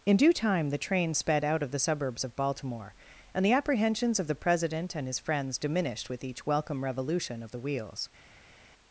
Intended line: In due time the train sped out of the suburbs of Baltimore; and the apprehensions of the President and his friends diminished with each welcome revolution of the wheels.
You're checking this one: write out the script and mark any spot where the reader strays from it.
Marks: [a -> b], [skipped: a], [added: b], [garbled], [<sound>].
In due time the train sped out of the suburbs of Baltimore; and the apprehensions of the President and his friends diminished with each welcome revolution of the wheels.